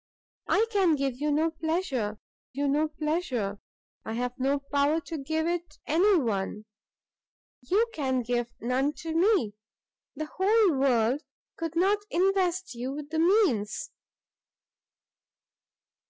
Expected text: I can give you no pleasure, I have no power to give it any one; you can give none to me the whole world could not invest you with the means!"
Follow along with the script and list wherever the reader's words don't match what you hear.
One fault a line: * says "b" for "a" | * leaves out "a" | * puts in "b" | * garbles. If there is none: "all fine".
* puts in "you no pleasure"